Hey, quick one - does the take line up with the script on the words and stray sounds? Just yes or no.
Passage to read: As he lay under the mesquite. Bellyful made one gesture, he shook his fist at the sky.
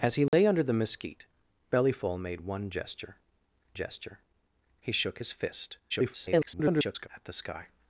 no